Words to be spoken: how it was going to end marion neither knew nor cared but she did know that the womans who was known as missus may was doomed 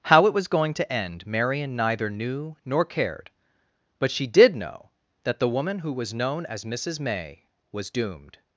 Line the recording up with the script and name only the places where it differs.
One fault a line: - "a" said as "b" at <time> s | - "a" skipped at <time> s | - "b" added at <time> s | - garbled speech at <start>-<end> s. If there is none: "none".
- "womans" said as "woman" at 5.5 s